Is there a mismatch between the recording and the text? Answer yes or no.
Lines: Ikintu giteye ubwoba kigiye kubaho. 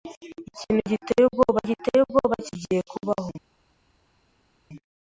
yes